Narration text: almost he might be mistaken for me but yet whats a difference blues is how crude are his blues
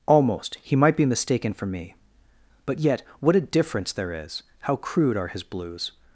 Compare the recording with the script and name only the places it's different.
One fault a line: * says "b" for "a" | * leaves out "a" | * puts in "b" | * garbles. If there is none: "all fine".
* says "what" for "whats"
* says "there" for "blues"